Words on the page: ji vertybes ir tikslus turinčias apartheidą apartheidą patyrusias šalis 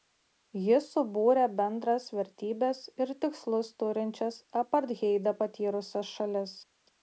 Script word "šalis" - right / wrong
right